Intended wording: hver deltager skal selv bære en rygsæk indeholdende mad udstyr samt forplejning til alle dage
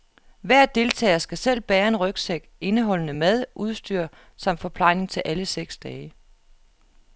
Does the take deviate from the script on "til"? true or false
false